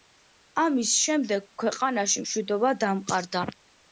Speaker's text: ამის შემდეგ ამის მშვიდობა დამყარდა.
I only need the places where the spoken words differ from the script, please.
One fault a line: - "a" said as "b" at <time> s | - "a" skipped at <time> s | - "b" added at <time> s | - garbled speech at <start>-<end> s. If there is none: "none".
- "ამის" said as "ქვეყანაში" at 1.6 s